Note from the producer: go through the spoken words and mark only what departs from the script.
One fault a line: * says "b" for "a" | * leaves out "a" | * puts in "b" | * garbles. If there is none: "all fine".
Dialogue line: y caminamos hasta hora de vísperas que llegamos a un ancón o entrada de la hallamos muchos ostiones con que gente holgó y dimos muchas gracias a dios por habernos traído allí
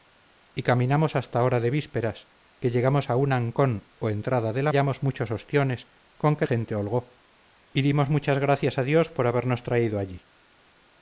all fine